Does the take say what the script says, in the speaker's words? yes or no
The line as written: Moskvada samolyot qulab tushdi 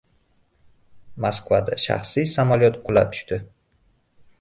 no